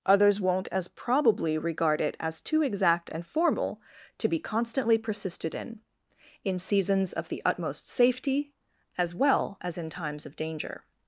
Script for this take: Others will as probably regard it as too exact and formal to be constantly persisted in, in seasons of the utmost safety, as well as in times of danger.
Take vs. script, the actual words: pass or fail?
fail